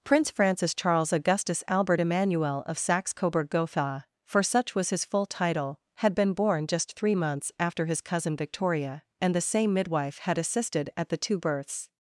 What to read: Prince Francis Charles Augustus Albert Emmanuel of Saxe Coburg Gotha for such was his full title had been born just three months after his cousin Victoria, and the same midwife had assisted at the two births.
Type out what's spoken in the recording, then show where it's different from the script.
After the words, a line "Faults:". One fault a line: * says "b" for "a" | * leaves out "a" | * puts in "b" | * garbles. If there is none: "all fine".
Prince Francis Charles Augustus Albert Emmanuel of Saxe Coburg Gotha for such was his full title had been born just three months after his cousin Victoria, and the same midwife had assisted at the two births.
Faults:
all fine